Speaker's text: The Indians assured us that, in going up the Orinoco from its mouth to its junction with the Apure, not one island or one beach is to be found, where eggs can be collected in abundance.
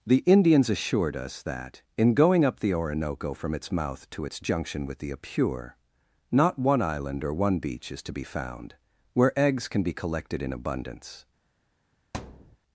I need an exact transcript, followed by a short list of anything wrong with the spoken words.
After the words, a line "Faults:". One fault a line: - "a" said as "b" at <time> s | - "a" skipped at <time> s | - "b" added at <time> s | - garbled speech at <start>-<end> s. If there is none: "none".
The Indians assured us that, in going up the Orinoco from its mouth to its junction with the Apure, not one island or one beach is to be found, where eggs can be collected in abundance.
Faults:
none